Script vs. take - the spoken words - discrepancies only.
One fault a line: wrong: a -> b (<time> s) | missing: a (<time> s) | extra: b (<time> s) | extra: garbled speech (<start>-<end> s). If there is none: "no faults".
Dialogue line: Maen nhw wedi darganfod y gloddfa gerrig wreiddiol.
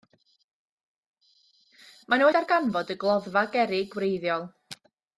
missing: wedi (2.3 s)